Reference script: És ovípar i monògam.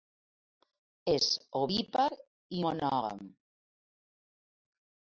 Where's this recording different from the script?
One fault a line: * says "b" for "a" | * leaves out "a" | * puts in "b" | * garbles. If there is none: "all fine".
all fine